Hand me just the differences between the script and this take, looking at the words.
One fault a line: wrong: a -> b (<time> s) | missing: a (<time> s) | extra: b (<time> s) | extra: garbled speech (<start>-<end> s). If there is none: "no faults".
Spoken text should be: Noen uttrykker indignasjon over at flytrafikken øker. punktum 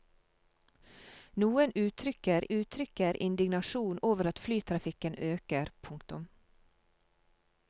extra: uttrykker (2.6 s)